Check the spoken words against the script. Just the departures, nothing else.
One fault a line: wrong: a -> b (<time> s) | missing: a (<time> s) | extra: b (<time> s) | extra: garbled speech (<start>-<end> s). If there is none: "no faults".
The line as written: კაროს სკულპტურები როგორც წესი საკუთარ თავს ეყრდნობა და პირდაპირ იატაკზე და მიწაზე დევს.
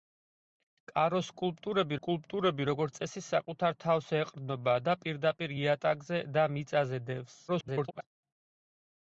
extra: სკულპტურები (2.0 s)
extra: garbled speech (7.5-8.0 s)